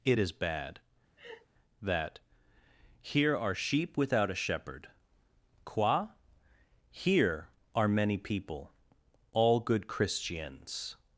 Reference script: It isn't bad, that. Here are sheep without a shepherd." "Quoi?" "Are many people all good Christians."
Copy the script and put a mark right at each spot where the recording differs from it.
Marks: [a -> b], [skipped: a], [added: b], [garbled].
It [isn't -> is] bad, that. Here are sheep without a shepherd." "Quoi?" [added: Here] "Are many people all good Christians."